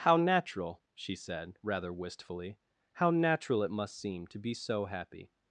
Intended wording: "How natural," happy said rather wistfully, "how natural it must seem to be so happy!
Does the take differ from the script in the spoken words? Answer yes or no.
yes